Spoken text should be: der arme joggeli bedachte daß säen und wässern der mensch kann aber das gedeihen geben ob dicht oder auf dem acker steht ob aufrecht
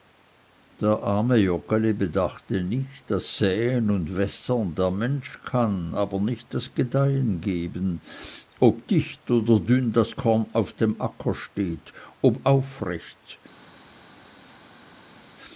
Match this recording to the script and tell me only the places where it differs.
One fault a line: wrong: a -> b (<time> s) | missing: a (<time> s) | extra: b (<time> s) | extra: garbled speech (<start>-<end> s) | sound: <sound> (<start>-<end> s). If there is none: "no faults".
extra: nicht (2.6 s)
extra: nicht (6.2 s)
extra: dünn das korn (9.6 s)